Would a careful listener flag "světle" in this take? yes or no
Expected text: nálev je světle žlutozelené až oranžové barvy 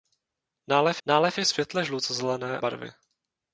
no